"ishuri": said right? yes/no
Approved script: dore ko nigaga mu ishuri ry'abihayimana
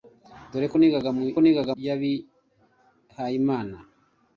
no